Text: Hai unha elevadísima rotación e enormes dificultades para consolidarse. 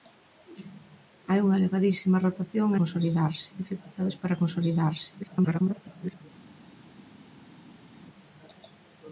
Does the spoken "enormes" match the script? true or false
false